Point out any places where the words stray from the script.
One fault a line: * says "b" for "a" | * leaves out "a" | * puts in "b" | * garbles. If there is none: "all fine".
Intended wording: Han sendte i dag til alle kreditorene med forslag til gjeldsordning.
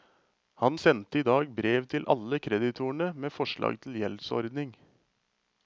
* puts in "brev"